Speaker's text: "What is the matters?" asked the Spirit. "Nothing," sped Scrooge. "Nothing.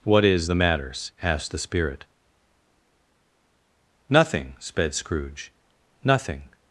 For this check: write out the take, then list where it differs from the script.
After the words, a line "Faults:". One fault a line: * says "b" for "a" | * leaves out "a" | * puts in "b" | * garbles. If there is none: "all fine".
"What is the matters?" asked the Spirit. "Nothing," sped Scrooge. "Nothing.
Faults:
all fine